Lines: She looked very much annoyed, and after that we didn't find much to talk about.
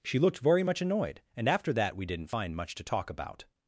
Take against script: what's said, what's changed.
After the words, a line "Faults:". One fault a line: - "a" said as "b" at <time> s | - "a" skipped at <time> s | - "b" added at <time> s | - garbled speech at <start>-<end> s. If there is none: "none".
She looked very much annoyed, and after that we didn't find much to talk about.
Faults:
none